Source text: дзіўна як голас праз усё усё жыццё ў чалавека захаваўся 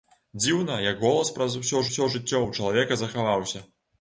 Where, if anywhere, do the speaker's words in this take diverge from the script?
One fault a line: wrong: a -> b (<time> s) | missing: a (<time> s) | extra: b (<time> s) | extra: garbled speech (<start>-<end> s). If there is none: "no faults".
no faults